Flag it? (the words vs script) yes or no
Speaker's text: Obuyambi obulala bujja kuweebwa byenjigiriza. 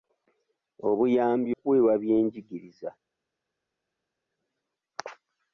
yes